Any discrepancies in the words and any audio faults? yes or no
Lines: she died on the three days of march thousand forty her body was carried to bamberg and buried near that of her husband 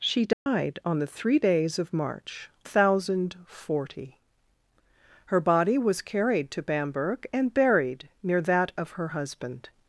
yes